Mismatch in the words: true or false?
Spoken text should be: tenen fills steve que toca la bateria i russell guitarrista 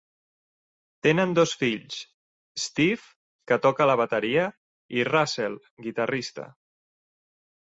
true